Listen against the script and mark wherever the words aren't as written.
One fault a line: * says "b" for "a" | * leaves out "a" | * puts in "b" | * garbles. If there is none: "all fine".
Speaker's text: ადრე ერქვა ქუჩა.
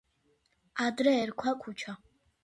all fine